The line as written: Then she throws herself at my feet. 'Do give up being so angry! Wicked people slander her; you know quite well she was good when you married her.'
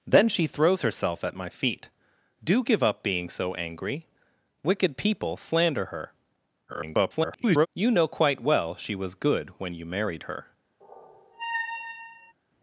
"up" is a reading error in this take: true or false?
false